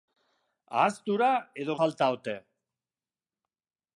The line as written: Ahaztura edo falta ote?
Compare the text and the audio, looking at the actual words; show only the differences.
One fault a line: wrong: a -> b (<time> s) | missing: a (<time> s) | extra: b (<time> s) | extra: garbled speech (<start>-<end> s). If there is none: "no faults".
no faults